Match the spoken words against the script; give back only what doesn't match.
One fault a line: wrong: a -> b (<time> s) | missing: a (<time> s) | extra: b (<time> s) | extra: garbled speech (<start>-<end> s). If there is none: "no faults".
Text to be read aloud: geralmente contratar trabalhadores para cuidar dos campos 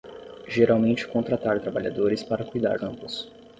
missing: dos (2.8 s)